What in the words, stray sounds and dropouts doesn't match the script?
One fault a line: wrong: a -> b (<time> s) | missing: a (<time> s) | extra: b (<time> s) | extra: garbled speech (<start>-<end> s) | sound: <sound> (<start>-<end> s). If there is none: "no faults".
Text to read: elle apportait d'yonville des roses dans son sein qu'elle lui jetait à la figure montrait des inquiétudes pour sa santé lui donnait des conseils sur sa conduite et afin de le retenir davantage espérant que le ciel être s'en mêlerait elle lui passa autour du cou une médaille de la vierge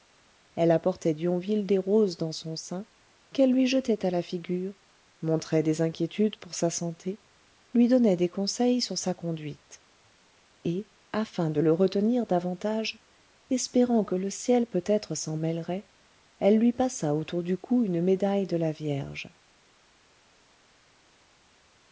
extra: peut (14.7 s)